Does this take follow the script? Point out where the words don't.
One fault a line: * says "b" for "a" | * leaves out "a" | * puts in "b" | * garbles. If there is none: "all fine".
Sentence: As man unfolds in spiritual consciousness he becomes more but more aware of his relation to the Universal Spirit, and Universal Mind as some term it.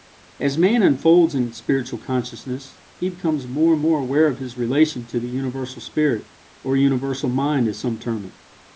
* says "and" for "but"
* says "or" for "and"